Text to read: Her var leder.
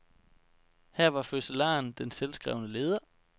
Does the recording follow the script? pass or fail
fail